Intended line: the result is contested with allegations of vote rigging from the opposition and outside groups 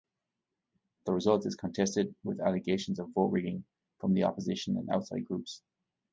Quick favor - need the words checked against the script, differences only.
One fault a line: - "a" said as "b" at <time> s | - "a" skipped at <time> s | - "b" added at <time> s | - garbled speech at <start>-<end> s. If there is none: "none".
none